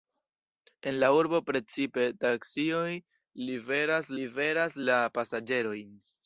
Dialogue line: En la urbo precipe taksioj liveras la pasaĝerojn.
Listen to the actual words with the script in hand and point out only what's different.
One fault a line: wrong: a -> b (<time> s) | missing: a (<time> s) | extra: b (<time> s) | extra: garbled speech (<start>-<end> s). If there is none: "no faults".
extra: liveras (4.2 s)